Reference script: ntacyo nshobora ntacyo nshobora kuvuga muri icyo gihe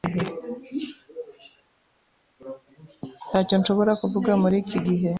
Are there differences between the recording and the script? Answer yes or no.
yes